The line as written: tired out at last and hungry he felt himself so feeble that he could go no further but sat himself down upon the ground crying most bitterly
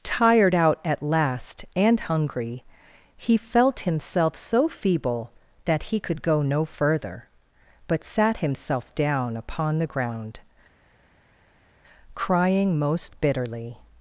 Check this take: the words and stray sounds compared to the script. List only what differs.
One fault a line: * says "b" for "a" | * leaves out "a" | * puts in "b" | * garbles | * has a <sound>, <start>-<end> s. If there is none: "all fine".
all fine